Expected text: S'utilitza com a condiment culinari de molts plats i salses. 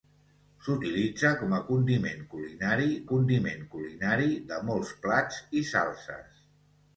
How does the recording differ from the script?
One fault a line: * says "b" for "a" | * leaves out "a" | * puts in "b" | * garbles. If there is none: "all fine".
* puts in "condiment culinari"